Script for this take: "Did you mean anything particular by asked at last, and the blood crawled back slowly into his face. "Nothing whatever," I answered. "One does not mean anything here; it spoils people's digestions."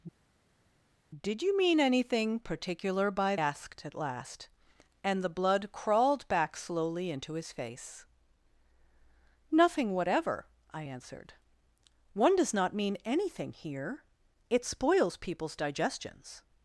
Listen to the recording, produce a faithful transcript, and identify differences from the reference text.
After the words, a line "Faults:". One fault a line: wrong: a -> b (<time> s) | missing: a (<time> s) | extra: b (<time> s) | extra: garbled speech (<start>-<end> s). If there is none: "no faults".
"Did you mean anything particular by asked at last, and the blood crawled back slowly into his face. "Nothing whatever," I answered. "One does not mean anything here; it spoils people's digestions."
Faults:
no faults